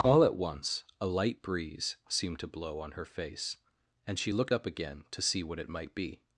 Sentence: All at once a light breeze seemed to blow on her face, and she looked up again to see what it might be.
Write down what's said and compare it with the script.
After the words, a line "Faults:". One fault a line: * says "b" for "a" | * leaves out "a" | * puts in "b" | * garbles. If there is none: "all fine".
All at once a light breeze seemed to blow on her face, and she looked up again to see what it might be.
Faults:
all fine